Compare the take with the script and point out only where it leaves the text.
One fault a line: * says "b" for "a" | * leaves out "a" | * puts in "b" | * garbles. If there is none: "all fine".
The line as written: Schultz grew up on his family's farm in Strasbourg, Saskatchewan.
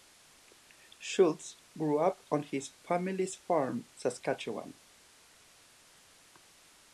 * leaves out "in Strasbourg"